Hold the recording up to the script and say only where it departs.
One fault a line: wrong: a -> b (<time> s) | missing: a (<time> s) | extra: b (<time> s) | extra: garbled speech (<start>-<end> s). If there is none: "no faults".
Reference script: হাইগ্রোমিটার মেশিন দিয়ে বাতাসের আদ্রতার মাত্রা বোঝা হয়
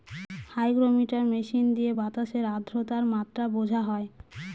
no faults